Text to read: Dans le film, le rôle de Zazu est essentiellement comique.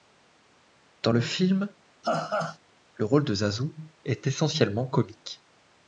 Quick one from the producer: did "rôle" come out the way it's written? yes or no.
yes